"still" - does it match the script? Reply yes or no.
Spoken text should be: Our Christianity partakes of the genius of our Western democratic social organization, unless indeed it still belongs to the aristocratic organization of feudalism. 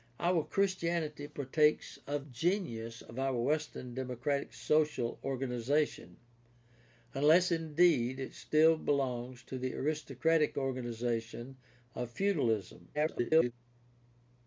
yes